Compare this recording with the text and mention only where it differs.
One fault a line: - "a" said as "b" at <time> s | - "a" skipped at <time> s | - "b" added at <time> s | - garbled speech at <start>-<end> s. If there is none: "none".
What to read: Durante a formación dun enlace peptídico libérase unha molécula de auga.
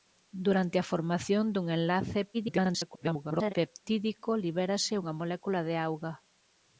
- garbled speech at 2.3-3.5 s